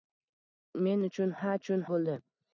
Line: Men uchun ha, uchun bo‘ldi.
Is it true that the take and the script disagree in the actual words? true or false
false